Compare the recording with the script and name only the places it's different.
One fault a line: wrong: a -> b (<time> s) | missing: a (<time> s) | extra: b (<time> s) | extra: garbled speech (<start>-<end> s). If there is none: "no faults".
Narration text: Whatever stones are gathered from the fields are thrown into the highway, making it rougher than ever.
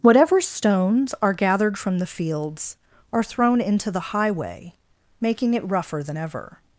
no faults